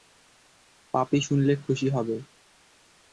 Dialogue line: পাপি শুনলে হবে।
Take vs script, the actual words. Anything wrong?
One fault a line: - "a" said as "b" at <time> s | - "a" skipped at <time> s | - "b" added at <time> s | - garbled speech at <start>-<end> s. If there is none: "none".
- "খুশি" added at 1.6 s